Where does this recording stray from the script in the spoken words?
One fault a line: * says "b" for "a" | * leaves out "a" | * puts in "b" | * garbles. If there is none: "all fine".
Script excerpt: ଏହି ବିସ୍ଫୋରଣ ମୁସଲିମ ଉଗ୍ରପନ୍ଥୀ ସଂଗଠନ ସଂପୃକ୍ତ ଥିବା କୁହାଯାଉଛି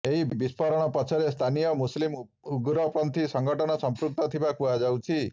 * puts in "ପଛରେ ସ୍ଥାନୀୟ"